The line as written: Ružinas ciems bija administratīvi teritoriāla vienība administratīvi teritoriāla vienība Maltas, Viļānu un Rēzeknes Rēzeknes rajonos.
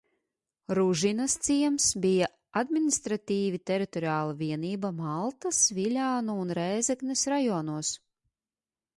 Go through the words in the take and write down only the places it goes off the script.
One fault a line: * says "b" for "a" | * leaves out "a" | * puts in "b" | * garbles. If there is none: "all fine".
* leaves out "administratīvi teritoriāla vienība"
* leaves out "Rēzeknes"